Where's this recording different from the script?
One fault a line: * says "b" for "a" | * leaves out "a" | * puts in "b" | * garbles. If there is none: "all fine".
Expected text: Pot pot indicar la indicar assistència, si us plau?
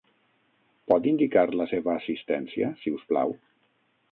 * leaves out "pot"
* says "seva" for "indicar"